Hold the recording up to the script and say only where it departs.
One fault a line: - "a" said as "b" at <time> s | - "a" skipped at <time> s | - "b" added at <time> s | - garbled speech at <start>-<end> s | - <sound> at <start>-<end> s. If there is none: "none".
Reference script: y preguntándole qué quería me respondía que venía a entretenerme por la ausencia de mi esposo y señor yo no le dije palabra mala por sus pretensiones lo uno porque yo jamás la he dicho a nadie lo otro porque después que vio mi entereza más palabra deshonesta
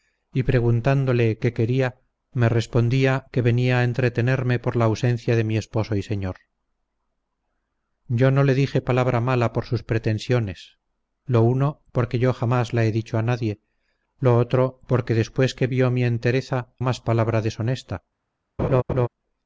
- laugh at 18.6-19.1 s